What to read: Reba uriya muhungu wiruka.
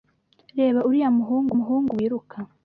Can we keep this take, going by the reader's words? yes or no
no